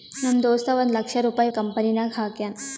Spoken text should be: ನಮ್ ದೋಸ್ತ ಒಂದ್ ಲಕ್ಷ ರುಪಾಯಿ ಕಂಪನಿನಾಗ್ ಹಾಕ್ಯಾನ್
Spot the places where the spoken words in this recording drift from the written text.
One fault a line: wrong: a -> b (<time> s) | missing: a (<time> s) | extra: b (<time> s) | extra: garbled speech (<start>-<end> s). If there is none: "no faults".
no faults